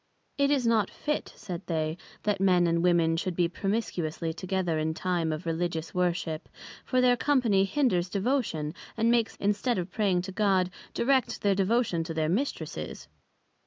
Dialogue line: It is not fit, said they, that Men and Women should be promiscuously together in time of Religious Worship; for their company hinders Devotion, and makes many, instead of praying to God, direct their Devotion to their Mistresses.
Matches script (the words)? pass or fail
fail